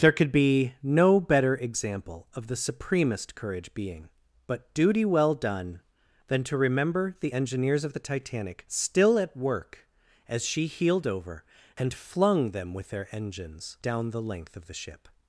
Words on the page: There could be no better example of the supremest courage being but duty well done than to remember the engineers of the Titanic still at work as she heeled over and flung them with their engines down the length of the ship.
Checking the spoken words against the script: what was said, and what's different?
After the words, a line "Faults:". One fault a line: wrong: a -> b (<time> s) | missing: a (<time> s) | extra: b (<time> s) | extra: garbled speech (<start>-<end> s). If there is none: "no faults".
There could be no better example of the supremest courage being but duty well done than to remember the engineers of the Titanic still at work as she heeled over and flung them with their engines down the length of the ship.
Faults:
no faults